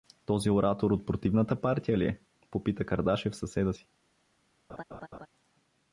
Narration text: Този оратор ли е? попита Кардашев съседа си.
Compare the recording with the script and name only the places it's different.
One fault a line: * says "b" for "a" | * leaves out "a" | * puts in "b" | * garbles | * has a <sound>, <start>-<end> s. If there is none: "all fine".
* puts in "от противната партия"
* has a laugh, 4.7-5.3 s